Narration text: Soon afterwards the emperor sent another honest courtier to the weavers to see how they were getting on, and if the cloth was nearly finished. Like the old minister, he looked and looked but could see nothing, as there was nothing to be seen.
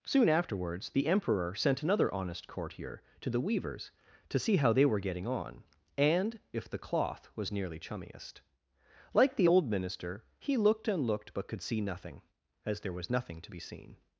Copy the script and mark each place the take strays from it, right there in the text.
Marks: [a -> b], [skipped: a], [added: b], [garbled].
Soon afterwards the emperor sent another honest courtier to the weavers to see how they were getting on, and if the cloth was nearly [finished. -> chummiest] Like the old minister, he looked and looked but could see nothing, as there was nothing to be seen.